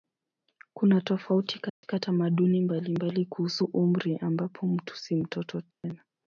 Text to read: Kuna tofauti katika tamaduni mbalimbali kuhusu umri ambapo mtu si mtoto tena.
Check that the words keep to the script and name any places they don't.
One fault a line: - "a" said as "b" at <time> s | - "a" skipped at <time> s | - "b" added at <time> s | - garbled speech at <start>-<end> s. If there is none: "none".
none